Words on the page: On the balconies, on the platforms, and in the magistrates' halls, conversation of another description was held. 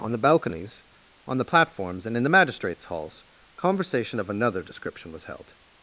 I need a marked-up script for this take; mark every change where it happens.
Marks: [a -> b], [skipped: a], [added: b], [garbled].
On the balconies, on the platforms, and in the magistrates' halls, conversation of another description was held.